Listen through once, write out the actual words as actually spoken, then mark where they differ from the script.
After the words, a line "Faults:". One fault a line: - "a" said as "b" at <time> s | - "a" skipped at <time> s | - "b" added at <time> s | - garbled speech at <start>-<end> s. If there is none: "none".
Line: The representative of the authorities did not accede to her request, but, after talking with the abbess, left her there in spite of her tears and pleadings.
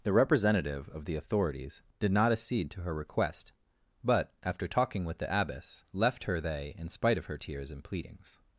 The representative of the authorities did not accede to her request, but, after talking with the abbess, left her they in spite of her tears and pleadings.
Faults:
- "there" said as "they" at 6.4 s